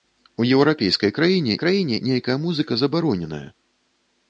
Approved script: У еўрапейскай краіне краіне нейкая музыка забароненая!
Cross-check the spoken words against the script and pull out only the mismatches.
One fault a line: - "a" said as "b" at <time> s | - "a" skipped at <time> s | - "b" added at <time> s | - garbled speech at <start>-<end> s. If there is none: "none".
none